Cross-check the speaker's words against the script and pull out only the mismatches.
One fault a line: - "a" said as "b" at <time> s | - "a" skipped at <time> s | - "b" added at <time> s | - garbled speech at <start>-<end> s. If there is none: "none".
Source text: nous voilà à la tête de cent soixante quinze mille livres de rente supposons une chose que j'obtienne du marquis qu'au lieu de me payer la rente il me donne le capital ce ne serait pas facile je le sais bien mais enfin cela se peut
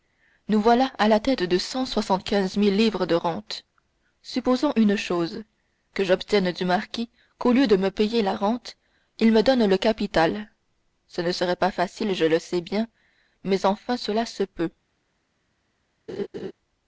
none